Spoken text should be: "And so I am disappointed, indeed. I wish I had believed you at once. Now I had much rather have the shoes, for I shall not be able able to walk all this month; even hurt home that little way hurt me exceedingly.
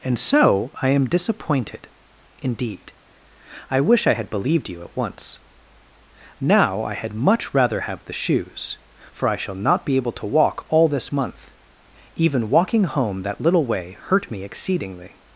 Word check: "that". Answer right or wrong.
right